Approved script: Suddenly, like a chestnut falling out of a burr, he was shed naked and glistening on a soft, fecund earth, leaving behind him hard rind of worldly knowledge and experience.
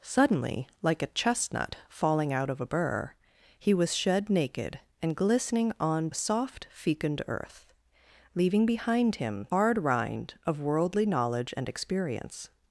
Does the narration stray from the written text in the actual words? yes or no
no